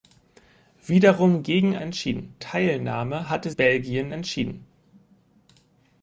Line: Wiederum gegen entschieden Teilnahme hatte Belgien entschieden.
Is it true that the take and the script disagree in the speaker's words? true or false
false